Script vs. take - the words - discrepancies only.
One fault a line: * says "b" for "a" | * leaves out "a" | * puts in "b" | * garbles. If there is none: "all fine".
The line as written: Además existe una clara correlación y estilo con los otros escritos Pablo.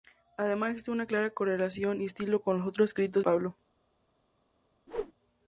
all fine